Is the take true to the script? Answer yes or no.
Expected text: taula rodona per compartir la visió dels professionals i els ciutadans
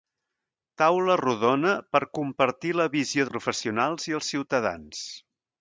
no